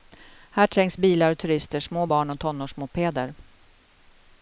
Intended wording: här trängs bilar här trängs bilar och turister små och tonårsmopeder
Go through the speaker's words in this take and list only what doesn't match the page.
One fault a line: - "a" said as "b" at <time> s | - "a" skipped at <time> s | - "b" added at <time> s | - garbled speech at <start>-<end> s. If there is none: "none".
- "här trängs bilar" skipped at 1.3 s
- "barn" added at 2.0 s